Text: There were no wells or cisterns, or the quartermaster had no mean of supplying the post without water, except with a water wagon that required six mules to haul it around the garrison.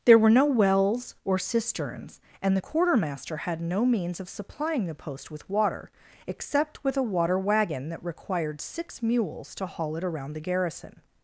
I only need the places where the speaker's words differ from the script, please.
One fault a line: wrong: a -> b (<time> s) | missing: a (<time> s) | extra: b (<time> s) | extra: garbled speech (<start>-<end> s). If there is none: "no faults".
wrong: or -> and (2.4 s)
wrong: mean -> means (3.8 s)
wrong: without -> with (5.3 s)